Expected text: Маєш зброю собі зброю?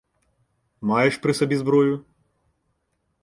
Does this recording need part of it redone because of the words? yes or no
yes